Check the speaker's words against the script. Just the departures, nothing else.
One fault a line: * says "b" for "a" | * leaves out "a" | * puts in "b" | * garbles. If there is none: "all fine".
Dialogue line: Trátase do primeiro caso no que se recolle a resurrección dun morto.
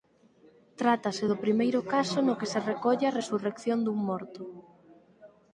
all fine